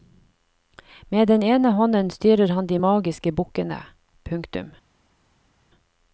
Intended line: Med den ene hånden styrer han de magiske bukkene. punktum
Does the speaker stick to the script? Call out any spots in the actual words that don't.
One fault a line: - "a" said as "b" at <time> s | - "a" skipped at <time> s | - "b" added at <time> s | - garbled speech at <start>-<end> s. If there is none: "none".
none